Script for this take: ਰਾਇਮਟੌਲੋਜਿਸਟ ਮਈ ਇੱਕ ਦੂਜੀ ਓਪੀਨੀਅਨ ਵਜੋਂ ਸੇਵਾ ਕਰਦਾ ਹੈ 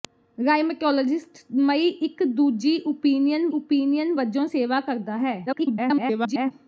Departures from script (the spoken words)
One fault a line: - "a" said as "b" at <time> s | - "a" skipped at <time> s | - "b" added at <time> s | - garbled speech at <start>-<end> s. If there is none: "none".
- "ਓਪੀਨੀਅਨ" added at 3.5 s
- garbled speech at 5.5-6.5 s